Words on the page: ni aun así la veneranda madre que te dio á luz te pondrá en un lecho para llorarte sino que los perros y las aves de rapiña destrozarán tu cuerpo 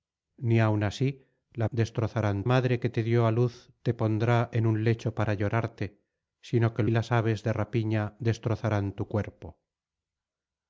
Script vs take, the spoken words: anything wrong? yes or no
yes